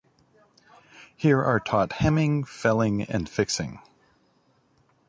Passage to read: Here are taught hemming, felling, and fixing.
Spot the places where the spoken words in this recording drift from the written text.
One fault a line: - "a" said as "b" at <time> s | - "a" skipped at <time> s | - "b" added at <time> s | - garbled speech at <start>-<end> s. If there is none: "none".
none